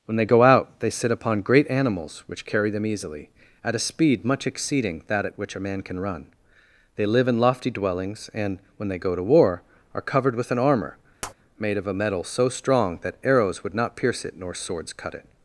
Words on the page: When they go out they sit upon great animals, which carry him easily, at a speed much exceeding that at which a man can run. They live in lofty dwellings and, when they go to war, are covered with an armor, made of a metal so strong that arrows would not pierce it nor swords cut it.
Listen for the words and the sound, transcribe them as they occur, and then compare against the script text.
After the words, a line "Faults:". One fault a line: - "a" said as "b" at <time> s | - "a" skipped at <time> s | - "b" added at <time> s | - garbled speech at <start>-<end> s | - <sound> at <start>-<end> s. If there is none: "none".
When they go out they sit upon great animals, which carry them easily, at a speed much exceeding that at which a man can run. They live in lofty dwellings and, when they go to war, are covered with an armor, made of a metal so strong that arrows would not pierce it nor swords cut it.
Faults:
- "him" said as "them" at 2.7 s
- tap at 11.2-11.3 s